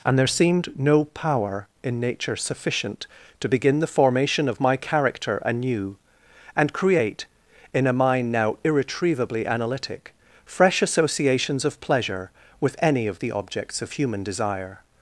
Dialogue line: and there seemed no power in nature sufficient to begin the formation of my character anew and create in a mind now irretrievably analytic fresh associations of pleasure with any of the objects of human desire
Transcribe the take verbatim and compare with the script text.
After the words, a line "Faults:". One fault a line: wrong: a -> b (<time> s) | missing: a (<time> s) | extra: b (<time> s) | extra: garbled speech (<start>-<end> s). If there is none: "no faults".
and there seemed no power in nature sufficient to begin the formation of my character anew and create in a mind now irretrievably analytic fresh associations of pleasure with any of the objects of human desire
Faults:
no faults